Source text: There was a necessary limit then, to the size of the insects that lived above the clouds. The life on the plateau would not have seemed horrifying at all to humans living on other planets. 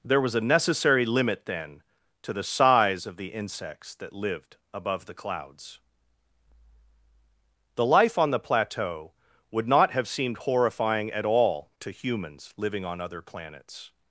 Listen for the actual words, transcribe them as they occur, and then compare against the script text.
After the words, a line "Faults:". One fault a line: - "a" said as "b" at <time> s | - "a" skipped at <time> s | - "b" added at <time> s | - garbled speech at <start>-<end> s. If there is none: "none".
There was a necessary limit then, to the size of the insects that lived above the clouds. The life on the plateau would not have seemed horrifying at all to humans living on other planets.
Faults:
none